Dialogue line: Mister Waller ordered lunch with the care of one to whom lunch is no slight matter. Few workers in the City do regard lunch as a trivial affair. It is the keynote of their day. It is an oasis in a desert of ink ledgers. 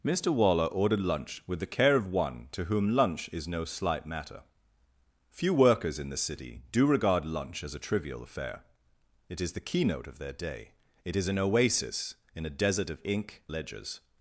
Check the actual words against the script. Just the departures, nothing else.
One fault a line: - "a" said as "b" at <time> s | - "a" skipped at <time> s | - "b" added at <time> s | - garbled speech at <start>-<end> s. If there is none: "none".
none